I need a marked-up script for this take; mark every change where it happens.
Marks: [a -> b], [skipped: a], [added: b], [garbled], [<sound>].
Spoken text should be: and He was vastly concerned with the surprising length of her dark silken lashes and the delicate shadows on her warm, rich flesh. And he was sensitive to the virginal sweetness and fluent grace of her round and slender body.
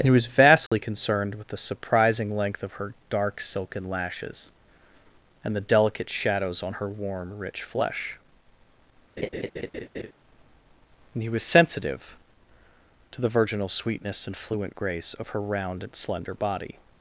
and He was vastly [dropout] concerned with the surprising length of her dark silken lashes and the delicate shadows on her warm, rich flesh. [laugh] And he was sensitive to the virginal sweetness and fluent grace of her round and slender body.